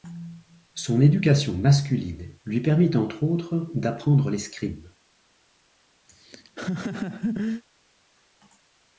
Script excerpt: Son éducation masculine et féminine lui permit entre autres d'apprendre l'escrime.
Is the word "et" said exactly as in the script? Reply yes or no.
no